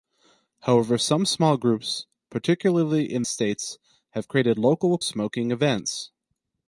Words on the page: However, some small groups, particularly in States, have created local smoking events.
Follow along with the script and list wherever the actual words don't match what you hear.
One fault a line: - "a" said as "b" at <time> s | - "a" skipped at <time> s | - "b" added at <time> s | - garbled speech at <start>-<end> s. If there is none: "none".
none